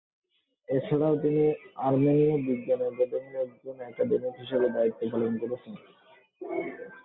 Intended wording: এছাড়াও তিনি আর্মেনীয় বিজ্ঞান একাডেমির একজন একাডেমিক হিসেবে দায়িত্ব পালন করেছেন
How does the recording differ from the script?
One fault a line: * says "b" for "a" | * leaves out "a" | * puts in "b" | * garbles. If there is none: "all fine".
all fine